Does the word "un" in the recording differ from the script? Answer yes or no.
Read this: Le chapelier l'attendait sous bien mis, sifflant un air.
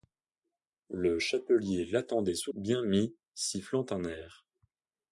no